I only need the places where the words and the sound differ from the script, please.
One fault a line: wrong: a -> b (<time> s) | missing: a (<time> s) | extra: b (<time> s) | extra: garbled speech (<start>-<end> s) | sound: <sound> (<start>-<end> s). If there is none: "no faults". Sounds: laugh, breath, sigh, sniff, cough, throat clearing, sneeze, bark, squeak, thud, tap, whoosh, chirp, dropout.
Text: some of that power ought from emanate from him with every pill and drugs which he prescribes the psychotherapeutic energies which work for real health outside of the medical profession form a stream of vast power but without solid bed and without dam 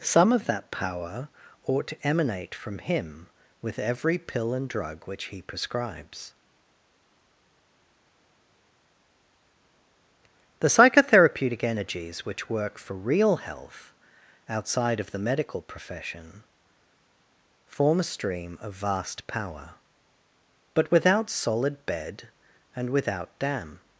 wrong: from -> to (1.9 s)
wrong: drugs -> drug (4.7 s)